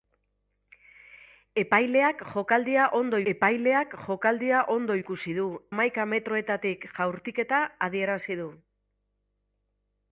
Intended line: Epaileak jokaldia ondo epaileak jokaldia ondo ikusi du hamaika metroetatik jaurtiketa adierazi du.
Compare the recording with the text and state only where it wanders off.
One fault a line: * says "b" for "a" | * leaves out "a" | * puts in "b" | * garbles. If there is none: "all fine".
all fine